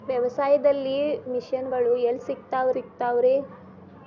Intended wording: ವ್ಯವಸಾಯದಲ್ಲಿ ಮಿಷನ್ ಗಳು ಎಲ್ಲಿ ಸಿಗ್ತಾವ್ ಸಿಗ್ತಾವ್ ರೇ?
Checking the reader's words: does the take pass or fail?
pass